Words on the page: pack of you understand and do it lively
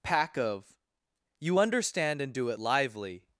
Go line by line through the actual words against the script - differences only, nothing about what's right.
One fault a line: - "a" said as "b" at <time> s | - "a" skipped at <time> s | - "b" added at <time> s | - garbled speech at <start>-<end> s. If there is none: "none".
none